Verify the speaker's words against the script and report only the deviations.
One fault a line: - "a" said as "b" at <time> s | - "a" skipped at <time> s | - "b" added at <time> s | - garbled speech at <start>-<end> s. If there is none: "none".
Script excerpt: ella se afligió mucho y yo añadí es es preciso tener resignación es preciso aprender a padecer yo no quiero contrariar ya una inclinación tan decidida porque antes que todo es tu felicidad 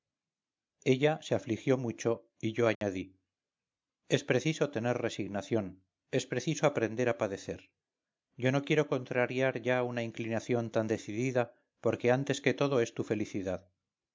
- "es" skipped at 4.2 s